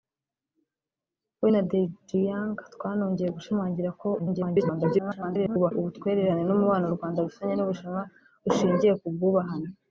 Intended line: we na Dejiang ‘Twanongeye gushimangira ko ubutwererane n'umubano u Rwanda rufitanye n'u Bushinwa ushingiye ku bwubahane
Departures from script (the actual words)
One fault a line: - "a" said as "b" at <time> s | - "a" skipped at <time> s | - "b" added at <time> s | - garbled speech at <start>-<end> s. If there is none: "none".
- garbled speech at 4.2-5.7 s